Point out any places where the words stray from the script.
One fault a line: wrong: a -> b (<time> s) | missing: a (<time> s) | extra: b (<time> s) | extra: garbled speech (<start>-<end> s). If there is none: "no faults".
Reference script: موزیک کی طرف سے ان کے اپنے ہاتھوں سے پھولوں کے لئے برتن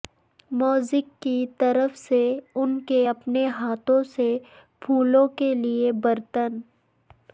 no faults